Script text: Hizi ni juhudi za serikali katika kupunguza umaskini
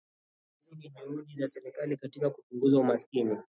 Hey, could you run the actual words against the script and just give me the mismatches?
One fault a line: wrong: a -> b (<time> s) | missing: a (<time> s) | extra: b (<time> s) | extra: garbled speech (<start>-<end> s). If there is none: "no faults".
no faults